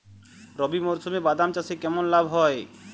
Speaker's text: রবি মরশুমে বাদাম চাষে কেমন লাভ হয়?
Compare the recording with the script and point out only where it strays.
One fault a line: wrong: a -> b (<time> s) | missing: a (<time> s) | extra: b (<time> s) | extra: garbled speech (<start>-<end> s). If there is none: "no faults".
no faults